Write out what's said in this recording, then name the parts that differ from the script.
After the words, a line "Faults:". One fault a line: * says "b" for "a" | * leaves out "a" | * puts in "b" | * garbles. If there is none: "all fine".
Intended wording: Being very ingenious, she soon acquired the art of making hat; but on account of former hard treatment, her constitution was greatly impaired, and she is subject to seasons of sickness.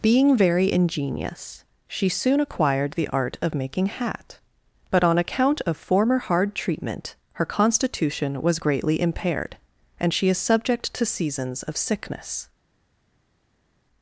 Being very ingenious, she soon acquired the art of making hat; but on account of former hard treatment, her constitution was greatly impaired, and she is subject to seasons of sickness.
Faults:
all fine